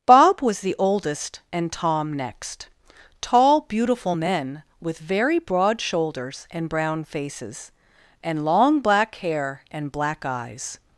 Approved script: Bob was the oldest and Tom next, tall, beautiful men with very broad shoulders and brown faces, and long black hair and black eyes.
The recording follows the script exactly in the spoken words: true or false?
true